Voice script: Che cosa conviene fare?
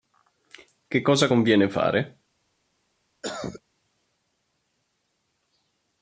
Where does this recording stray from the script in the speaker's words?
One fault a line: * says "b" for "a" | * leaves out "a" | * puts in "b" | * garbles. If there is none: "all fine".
all fine